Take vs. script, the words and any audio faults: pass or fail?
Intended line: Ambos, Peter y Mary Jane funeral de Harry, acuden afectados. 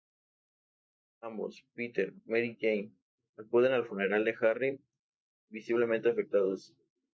fail